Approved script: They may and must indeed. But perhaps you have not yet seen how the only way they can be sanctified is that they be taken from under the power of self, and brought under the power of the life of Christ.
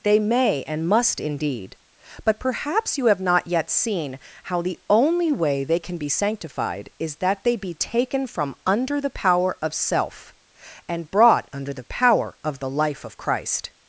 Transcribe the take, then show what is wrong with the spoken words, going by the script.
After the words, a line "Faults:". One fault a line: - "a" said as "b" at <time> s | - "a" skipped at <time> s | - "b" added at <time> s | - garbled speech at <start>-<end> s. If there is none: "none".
They may and must indeed. But perhaps you have not yet seen how the only way they can be sanctified is that they be taken from under the power of self, and brought under the power of the life of Christ.
Faults:
none